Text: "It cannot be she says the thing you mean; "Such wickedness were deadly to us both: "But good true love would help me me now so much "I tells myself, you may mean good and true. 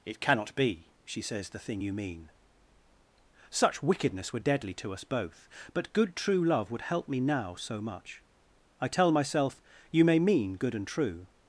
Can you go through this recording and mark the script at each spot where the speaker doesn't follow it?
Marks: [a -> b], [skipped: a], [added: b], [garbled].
"It cannot be she says the thing you mean; "Such wickedness were deadly to us both: "But good true love would help me [skipped: me] now so much "I [tells -> tell] myself, you may mean good and true.